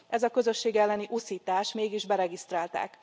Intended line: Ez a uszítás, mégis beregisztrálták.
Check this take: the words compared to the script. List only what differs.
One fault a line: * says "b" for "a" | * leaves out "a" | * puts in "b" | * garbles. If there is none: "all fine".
* puts in "közösség elleni"